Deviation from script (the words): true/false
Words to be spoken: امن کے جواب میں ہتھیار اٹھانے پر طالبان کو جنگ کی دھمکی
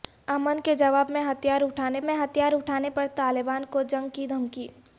true